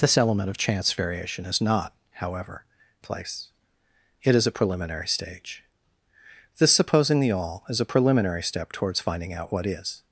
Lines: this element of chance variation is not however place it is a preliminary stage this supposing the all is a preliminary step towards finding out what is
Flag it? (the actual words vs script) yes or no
no